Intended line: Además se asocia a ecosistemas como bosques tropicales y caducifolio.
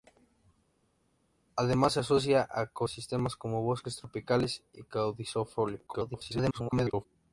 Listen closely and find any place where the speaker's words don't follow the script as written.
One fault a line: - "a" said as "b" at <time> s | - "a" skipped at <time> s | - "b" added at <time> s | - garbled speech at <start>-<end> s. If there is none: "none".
- garbled speech at 5.9-7.1 s